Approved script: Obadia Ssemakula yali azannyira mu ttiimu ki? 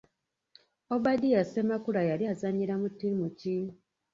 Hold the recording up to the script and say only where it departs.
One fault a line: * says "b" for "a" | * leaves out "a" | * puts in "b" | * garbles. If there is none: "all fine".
all fine